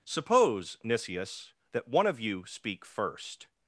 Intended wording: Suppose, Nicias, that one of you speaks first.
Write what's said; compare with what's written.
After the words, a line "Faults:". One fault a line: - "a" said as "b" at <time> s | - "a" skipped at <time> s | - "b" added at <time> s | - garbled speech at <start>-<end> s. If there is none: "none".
Suppose, Nicias, that one of you speak first.
Faults:
- "speaks" said as "speak" at 2.5 s